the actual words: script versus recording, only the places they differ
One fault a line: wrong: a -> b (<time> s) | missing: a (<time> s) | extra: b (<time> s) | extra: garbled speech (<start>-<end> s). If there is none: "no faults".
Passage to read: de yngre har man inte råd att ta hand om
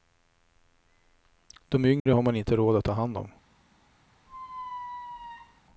no faults